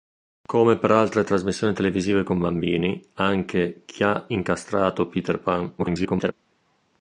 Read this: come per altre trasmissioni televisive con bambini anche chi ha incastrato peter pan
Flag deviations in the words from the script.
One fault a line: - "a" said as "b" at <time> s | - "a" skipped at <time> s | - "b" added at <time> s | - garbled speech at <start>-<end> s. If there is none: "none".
- garbled speech at 5.8-6.3 s